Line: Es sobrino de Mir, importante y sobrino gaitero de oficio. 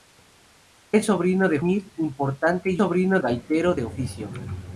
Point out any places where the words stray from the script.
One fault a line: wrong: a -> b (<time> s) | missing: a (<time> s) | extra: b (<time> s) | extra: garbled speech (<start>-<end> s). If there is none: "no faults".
no faults